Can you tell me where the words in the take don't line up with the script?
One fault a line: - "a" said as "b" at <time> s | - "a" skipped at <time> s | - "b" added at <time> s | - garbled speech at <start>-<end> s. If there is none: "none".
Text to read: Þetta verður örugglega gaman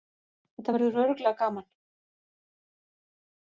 none